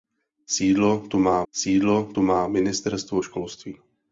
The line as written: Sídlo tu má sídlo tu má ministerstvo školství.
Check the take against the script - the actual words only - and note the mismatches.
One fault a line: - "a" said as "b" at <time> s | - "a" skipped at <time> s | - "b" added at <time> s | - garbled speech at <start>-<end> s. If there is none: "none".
none